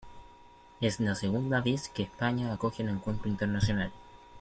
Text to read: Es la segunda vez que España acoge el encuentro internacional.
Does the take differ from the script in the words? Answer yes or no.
no